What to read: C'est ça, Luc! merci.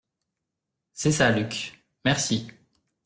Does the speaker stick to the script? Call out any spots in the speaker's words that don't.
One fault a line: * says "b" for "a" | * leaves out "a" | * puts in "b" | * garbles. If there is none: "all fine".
all fine